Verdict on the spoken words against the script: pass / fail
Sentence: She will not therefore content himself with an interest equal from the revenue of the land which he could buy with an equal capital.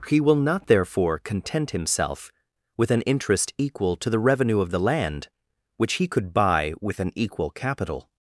fail